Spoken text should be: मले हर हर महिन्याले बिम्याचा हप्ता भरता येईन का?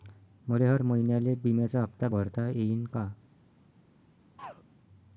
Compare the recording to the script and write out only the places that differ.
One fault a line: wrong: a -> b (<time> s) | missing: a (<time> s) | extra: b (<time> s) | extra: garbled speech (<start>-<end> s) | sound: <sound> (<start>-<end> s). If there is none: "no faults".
missing: हर (0.8 s)
sound: throat clearing (4.4-4.6 s)